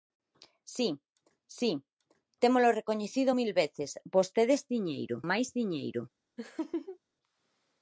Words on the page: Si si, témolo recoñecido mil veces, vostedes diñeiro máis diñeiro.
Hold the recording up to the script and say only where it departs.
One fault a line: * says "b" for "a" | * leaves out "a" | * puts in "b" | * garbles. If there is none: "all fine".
all fine